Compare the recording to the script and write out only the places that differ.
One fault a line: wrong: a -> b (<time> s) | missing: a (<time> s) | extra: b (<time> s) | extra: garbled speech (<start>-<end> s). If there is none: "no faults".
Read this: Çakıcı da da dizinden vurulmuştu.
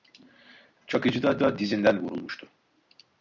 no faults